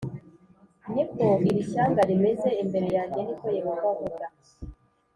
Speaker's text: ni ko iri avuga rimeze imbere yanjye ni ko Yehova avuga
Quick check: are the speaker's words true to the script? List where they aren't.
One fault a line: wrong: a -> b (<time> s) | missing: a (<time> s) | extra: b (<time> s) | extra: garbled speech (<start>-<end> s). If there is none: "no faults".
wrong: avuga -> shyanga (1.7 s)